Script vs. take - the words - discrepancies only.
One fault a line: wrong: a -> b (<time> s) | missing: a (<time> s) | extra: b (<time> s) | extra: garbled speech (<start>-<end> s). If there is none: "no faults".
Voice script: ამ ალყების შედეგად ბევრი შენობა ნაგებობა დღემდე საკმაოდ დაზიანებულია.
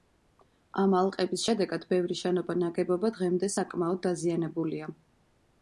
no faults